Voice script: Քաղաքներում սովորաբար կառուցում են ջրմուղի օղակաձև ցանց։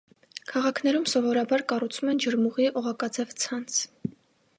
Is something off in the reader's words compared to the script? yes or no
no